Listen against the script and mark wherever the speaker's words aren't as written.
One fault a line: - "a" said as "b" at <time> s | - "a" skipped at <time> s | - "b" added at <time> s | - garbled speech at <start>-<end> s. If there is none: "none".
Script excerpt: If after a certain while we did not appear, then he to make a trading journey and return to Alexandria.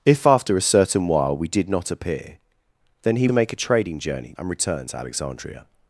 none